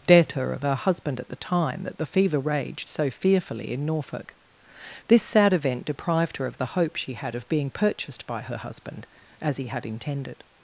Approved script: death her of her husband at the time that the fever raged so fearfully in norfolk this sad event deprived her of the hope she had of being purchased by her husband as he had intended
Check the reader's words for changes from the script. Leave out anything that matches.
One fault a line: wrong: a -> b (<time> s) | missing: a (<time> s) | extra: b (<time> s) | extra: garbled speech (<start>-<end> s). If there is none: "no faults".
no faults